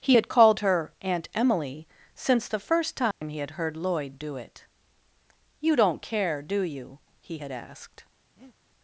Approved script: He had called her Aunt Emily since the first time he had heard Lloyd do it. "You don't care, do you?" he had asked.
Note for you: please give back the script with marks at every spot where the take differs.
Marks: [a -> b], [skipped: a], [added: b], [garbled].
He had called her Aunt Emily since the first time he had heard Lloyd do it. "You don't care, do you?" he had asked.